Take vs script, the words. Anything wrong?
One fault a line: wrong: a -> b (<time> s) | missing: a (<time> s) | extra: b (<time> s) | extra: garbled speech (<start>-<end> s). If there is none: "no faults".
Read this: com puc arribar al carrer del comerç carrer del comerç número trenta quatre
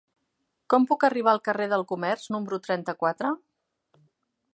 missing: carrer del comerç (2.3 s)